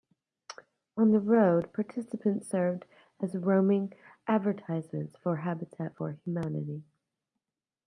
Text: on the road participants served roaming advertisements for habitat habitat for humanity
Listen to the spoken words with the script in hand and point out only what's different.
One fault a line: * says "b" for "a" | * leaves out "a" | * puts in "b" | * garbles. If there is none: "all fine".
* puts in "as"
* leaves out "habitat"